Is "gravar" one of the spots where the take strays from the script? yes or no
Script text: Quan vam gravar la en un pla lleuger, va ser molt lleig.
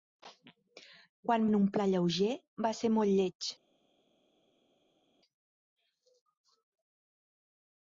yes